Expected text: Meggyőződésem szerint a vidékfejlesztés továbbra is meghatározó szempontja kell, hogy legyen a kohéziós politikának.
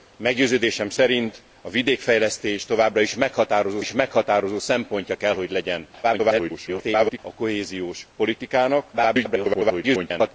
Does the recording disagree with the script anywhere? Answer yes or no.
yes